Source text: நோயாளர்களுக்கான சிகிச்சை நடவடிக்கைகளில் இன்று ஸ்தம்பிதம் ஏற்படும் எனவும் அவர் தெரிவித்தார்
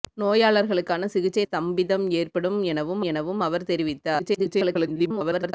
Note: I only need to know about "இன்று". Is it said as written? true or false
false